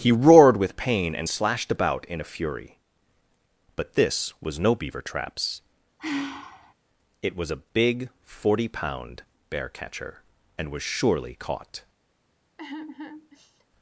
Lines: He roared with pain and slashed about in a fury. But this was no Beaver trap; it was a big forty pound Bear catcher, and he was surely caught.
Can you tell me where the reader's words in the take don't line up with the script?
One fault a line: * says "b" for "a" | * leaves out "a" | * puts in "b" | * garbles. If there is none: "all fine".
* says "traps" for "trap"
* leaves out "he"